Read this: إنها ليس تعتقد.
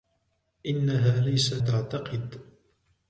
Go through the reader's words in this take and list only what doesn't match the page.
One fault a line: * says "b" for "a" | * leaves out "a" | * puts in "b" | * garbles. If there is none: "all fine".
all fine